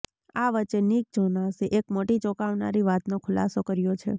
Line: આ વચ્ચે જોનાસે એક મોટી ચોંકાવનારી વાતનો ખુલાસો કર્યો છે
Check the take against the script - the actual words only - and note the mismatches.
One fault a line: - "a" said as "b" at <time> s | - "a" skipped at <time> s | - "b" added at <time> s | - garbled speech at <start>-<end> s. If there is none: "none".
- "નિક" added at 0.8 s